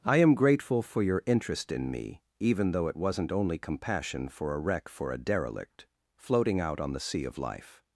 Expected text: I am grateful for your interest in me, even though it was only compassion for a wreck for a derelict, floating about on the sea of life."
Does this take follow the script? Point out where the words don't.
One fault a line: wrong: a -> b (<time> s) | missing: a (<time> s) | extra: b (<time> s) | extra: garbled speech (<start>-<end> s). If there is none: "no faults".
wrong: was -> wasn't (3.0 s)
wrong: about -> out (6.6 s)